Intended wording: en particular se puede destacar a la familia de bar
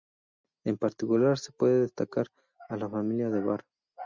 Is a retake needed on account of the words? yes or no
no